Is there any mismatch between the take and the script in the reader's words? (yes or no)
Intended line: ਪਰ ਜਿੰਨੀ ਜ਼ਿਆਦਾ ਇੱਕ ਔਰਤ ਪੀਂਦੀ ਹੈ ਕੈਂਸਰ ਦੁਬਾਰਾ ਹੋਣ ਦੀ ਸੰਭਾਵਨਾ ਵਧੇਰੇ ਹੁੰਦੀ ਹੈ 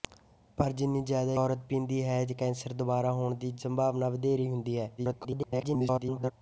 yes